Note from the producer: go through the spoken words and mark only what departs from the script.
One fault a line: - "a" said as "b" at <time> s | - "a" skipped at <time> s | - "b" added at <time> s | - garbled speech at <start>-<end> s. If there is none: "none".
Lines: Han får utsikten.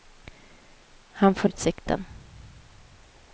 none